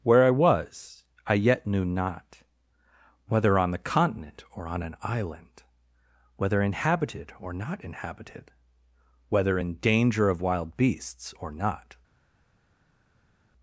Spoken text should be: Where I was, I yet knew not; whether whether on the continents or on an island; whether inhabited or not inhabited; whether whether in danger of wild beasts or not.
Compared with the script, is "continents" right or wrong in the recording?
wrong